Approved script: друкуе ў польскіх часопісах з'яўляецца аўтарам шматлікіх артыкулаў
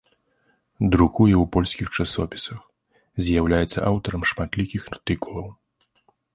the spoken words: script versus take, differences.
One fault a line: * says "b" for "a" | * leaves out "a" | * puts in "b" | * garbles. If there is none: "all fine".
all fine